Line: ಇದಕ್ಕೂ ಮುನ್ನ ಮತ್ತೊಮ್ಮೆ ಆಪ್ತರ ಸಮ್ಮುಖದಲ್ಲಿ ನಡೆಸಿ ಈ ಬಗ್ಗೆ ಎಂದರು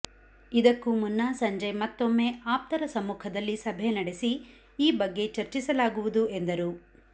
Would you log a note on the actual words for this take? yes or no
yes